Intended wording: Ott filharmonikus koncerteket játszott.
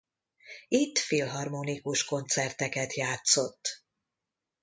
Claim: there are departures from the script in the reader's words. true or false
true